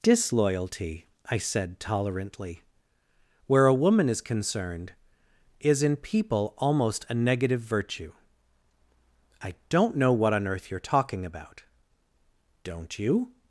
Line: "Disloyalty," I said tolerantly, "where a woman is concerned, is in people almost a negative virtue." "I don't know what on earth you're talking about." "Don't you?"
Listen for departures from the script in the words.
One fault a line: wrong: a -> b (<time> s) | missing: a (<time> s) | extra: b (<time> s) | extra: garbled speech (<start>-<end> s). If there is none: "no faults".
no faults